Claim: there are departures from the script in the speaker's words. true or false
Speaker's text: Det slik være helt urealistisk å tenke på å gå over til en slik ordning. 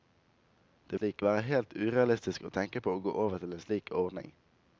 false